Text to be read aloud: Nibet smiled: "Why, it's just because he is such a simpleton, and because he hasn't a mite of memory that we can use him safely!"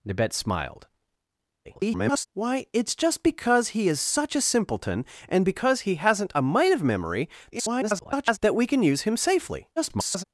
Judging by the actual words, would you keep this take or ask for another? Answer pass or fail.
fail